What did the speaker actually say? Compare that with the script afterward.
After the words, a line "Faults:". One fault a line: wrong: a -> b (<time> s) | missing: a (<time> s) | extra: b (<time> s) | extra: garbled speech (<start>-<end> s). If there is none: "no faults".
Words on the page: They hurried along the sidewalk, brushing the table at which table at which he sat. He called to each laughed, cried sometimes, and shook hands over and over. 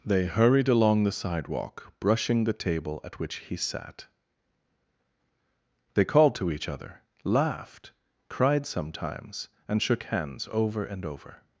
They hurried along the sidewalk, brushing the table at which he sat. They called to each other, laughed, cried sometimes, and shook hands over and over.
Faults:
missing: table at which (3.4 s)
wrong: He -> They (5.9 s)
extra: other (6.7 s)